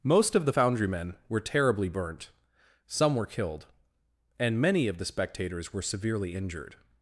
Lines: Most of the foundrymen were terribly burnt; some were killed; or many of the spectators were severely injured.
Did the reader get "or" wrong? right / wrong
wrong